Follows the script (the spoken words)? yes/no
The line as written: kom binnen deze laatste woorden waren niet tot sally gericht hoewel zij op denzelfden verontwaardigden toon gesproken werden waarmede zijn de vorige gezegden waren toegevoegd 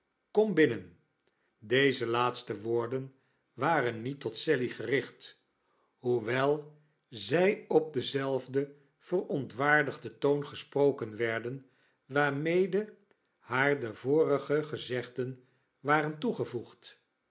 no